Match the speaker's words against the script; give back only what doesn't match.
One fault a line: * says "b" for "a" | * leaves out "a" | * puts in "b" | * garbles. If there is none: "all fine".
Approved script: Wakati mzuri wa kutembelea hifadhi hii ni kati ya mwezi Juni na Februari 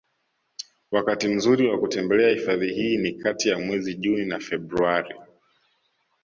all fine